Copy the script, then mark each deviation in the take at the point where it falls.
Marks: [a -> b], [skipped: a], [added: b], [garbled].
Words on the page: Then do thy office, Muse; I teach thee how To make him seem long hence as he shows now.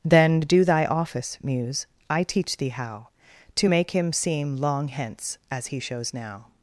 Then do thy office, Muse; I teach thee how To make him seem long hence as he shows now.